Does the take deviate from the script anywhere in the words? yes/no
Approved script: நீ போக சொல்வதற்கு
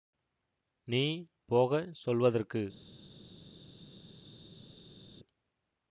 no